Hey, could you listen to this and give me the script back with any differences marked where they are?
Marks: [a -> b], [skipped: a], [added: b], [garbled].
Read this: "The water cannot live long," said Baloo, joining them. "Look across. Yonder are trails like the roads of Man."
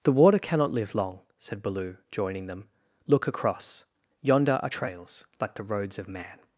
"The water cannot live long," said Baloo, joining them. "Look across. Yonder are trails like the roads of Man."